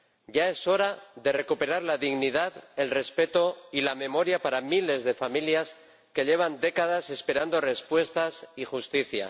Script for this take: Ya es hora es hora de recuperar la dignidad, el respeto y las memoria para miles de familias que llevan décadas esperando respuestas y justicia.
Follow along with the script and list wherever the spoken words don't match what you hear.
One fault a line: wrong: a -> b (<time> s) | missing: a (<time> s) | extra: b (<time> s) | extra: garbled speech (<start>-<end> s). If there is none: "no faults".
missing: es hora (1.0 s)
wrong: las -> la (3.8 s)